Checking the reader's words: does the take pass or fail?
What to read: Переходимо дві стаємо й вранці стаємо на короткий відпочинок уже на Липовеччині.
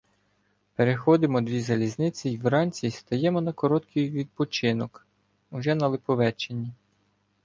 fail